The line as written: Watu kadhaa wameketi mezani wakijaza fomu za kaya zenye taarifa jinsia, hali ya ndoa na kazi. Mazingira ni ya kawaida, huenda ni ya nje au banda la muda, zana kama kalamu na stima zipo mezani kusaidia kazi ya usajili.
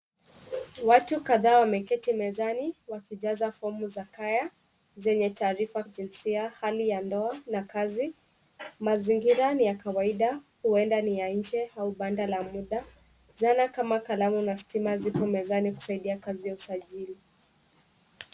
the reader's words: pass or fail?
pass